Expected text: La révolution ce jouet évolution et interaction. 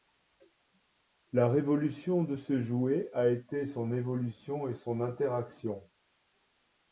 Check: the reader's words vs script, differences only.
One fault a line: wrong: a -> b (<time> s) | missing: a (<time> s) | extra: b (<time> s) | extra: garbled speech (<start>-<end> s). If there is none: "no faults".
extra: de (2.2 s)
extra: a été son (3.1 s)
extra: son (4.7 s)